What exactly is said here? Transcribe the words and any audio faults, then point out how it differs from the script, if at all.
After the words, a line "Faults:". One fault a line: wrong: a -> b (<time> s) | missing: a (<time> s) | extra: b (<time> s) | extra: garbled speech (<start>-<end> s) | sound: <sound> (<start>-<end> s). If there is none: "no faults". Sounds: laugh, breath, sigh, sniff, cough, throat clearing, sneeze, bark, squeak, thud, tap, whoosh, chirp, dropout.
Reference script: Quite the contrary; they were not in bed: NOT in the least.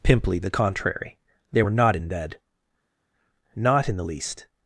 Pimply the contrary; they were not in bed: NOT in the least.
Faults:
wrong: Quite -> Pimply (0.0 s)